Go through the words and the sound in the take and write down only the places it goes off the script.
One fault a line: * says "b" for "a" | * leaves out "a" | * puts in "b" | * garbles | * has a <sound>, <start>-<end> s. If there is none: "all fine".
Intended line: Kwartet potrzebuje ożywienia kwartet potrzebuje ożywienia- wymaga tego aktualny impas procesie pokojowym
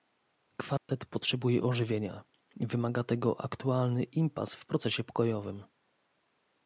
* has a dropout, 0.8-0.9 s
* leaves out "kwartet potrzebuje ożywienia"
* puts in "w"